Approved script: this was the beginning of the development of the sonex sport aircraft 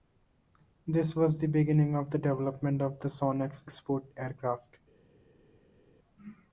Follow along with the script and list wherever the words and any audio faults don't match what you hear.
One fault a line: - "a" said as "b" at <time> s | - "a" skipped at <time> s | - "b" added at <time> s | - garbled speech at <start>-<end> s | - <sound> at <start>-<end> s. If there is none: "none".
none